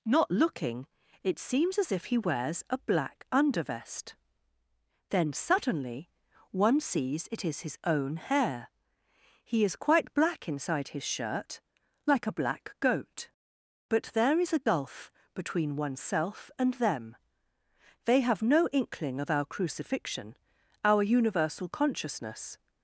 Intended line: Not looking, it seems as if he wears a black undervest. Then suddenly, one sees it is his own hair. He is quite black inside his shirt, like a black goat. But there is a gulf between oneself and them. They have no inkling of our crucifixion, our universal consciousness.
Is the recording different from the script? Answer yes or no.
no